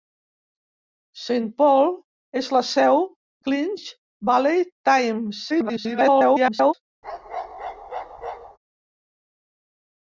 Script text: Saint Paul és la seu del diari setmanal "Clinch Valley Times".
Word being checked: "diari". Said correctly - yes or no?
no